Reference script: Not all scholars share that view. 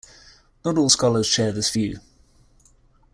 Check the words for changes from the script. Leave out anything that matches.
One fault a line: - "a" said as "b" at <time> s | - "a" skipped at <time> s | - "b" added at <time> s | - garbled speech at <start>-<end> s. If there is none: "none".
- "that" said as "this" at 1.5 s